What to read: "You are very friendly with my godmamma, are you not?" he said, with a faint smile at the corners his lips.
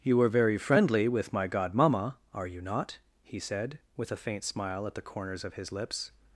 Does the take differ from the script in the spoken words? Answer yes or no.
yes